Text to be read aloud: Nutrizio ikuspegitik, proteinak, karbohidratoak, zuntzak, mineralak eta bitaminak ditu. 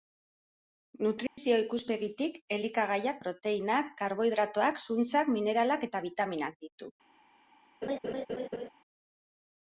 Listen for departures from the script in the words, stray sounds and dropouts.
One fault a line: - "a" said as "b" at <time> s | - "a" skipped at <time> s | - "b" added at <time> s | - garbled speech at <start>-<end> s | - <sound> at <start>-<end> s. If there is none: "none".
- dropout at 1.3-1.4 s
- "elikagaiak" added at 2.6 s
- laugh at 7.8-8.7 s